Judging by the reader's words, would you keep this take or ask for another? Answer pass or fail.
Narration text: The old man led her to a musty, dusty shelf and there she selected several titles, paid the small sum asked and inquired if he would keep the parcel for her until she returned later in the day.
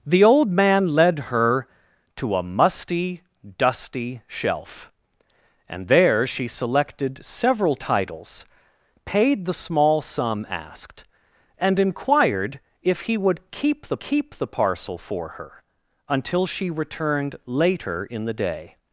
fail